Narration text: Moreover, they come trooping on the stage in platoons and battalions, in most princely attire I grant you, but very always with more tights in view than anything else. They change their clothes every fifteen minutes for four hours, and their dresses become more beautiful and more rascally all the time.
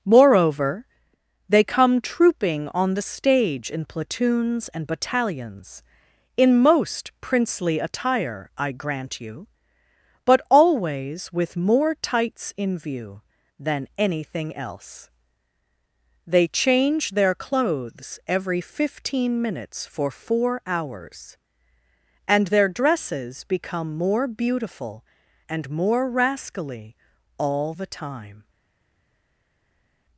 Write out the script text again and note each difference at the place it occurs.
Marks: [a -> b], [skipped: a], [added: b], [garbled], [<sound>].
Moreover, they come trooping on the stage in platoons and battalions, in most princely attire I grant you, but [skipped: very] always with more tights in view than anything else. They change their clothes every fifteen minutes for four hours, and their dresses become more beautiful and more rascally all the time.